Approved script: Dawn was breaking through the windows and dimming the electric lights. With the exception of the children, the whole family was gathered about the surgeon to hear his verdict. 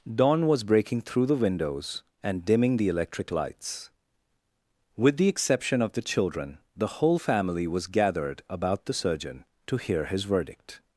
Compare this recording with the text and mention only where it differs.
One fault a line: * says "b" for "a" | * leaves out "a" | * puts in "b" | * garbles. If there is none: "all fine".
all fine